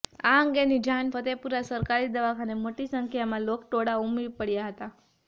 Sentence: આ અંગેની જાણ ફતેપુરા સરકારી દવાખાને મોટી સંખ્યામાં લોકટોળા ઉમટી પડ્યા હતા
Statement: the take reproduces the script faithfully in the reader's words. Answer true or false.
true